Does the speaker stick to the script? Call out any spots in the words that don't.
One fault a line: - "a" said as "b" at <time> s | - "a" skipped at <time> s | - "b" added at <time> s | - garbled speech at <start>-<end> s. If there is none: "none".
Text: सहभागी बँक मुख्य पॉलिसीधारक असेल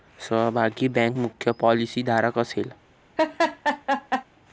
none